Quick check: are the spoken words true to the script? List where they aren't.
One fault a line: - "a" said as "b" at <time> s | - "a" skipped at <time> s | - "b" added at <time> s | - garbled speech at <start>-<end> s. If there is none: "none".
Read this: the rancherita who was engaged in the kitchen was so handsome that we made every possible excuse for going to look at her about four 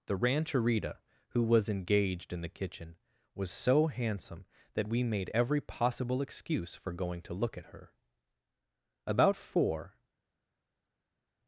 none